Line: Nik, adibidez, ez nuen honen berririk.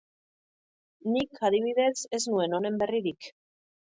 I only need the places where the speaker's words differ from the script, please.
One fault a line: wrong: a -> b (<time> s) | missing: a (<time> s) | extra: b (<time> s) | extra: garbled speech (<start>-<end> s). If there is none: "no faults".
no faults